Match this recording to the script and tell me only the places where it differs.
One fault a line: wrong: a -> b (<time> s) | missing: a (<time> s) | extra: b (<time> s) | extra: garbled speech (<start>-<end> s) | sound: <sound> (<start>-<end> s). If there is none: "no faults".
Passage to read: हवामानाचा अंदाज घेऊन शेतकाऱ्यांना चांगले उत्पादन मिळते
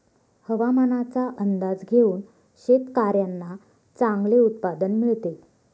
no faults